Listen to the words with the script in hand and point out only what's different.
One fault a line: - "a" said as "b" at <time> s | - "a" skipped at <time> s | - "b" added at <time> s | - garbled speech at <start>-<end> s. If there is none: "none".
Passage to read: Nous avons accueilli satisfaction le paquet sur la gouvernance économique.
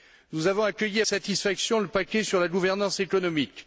none